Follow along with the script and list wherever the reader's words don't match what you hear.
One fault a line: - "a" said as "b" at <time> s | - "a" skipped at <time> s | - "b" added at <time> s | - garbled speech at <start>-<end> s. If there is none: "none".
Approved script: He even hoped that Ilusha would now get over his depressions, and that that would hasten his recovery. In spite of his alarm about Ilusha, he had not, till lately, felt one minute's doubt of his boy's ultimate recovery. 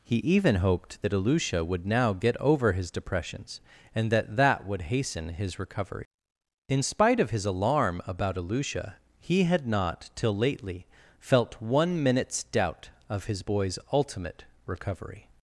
none